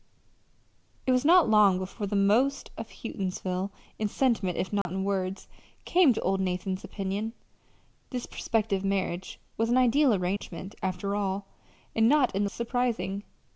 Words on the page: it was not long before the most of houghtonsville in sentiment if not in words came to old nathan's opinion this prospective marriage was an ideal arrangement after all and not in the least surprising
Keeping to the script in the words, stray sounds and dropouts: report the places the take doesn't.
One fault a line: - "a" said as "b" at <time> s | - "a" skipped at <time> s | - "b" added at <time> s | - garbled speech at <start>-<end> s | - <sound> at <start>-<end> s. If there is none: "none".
- dropout at 4.8-4.9 s
- dropout at 10.4-10.4 s
- "least" skipped at 12.5 s